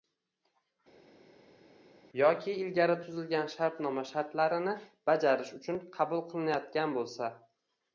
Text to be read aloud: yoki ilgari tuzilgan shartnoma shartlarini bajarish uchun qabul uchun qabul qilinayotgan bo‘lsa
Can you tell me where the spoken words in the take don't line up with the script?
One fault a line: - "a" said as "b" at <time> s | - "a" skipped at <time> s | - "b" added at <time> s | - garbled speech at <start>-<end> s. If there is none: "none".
- "uchun qabul" skipped at 6.2 s